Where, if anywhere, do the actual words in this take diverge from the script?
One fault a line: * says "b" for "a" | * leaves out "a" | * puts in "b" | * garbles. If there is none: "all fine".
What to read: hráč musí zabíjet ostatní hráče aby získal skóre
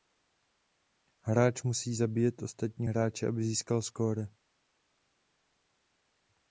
all fine